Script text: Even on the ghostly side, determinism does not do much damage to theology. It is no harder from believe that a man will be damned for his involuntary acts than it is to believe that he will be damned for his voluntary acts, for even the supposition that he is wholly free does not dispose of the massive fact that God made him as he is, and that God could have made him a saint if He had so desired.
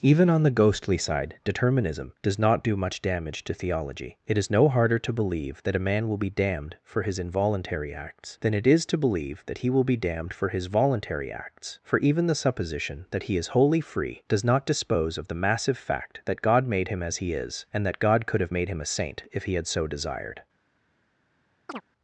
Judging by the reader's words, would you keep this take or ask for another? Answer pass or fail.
fail